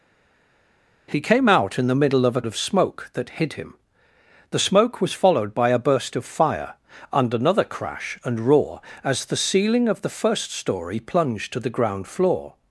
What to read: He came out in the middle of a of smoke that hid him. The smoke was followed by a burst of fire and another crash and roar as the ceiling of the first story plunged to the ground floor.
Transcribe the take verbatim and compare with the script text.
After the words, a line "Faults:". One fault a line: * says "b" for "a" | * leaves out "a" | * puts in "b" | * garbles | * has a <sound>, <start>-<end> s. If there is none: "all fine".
He came out in the middle of a of smoke that hid him. The smoke was followed by a burst of fire and another crash and roar as the ceiling of the first story plunged to the ground floor.
Faults:
all fine